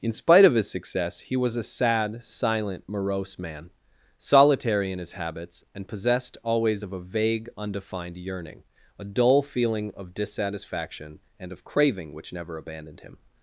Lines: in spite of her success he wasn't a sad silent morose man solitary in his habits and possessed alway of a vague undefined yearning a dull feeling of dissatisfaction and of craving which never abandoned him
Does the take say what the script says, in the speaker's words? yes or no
no